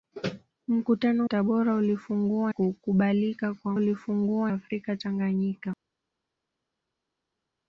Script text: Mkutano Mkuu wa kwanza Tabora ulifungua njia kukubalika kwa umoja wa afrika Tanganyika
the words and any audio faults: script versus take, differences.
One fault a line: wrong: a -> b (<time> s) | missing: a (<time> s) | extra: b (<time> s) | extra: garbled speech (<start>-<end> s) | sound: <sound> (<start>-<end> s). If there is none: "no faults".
missing: Mkuu wa kwanza (1.3 s)
missing: njia (2.5 s)
wrong: umoja -> ulifungua (3.7 s)